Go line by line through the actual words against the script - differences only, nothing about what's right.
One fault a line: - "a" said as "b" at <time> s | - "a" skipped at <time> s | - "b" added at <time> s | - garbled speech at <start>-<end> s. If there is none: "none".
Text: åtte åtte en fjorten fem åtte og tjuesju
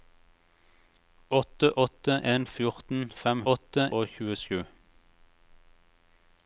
none